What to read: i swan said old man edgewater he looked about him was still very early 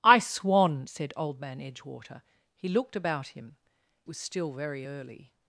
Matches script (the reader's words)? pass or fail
pass